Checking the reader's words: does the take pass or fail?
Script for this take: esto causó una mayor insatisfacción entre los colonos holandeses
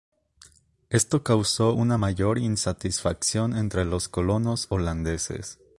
pass